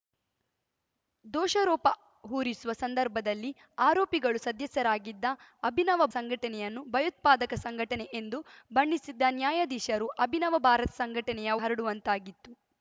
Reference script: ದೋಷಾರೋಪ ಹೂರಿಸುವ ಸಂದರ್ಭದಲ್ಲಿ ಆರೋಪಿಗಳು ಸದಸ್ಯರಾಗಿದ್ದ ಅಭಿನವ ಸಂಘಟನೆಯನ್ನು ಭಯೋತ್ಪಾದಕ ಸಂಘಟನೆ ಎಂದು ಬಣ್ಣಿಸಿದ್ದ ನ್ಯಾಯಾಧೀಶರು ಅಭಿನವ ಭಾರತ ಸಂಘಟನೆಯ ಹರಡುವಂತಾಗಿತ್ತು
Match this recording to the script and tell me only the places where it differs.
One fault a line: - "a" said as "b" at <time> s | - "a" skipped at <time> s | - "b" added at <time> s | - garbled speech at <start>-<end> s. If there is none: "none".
none